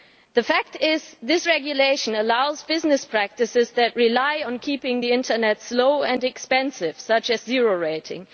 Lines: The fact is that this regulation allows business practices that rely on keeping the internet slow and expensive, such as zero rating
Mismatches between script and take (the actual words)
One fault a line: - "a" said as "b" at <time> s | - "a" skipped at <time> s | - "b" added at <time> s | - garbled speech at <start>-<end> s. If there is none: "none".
none